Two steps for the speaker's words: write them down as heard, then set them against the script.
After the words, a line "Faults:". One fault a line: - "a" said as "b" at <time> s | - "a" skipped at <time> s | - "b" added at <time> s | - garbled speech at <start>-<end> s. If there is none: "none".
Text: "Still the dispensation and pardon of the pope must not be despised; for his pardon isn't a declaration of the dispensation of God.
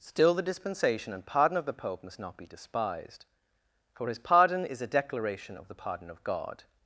"Still the dispensation and pardon of the pope must not be despised; for his pardon is a declaration of the pardon of God.
Faults:
- "isn't" said as "is" at 4.6 s
- "dispensation" said as "pardon" at 5.7 s